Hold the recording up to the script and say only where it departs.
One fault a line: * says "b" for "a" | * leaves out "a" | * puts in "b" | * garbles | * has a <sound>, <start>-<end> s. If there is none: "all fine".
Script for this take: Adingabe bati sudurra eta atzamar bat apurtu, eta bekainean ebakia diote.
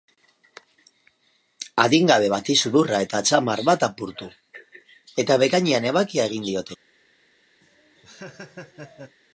* puts in "egin"
* has a laugh, 7.6-9.2 s